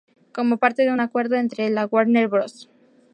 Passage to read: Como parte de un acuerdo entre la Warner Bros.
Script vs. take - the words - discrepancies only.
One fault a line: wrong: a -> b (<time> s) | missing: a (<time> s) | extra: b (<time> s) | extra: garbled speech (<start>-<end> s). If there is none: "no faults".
no faults